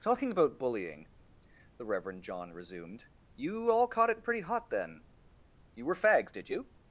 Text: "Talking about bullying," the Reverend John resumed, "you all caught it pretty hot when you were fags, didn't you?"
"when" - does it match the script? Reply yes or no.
no